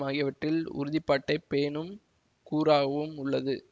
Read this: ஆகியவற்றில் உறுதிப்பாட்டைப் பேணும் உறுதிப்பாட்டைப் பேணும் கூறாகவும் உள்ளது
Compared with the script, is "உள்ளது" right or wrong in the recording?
right